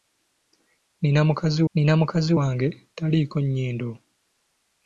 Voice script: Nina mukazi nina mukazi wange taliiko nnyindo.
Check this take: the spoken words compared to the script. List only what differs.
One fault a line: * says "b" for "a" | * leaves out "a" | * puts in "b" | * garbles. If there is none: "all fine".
all fine